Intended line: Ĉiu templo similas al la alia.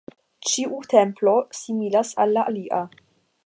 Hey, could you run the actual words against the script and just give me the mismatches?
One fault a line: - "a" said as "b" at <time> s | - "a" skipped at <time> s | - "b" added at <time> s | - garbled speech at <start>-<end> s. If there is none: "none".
none